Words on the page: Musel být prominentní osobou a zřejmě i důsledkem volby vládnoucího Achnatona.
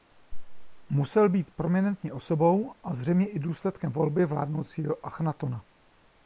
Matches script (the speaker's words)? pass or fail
pass